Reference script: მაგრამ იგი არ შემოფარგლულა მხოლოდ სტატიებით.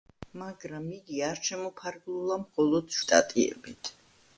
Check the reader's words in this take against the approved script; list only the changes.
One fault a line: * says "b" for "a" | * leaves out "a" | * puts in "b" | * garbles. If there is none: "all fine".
all fine